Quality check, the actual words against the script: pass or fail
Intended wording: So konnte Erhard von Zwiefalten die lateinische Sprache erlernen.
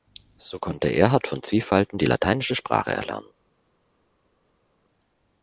pass